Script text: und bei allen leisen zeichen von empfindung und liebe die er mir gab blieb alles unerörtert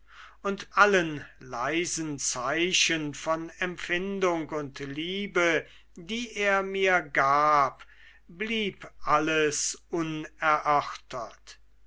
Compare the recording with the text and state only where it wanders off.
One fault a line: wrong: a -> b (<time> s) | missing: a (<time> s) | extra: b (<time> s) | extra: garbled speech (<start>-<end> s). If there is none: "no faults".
missing: bei (0.7 s)